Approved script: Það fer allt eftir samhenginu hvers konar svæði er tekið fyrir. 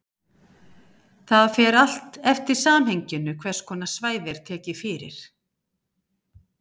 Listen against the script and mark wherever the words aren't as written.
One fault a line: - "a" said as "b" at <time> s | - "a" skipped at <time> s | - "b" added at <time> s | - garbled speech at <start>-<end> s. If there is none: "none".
none